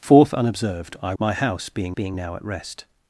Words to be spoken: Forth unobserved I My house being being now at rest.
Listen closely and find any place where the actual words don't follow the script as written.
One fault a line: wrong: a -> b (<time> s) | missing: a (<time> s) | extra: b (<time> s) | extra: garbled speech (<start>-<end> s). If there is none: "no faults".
no faults